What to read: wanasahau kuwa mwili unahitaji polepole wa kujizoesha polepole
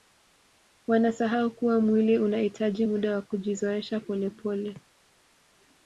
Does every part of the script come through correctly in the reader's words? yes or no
no